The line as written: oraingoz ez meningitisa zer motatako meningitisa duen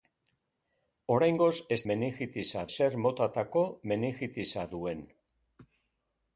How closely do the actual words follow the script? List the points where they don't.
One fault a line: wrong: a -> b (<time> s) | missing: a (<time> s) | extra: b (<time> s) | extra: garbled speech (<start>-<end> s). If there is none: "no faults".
no faults